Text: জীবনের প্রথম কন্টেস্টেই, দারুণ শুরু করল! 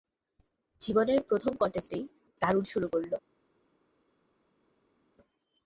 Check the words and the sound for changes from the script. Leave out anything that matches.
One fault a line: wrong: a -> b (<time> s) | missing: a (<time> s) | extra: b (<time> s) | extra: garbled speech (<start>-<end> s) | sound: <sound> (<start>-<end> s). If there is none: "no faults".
no faults